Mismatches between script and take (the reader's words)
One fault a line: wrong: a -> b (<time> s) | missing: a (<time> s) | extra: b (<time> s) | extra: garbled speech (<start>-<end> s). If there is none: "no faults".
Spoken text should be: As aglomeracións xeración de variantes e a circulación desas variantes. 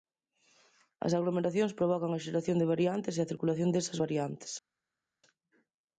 extra: provocan a (1.8 s)